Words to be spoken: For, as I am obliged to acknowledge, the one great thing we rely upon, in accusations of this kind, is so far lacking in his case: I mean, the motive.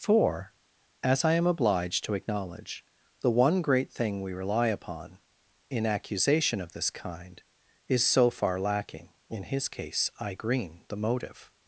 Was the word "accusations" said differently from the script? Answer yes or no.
yes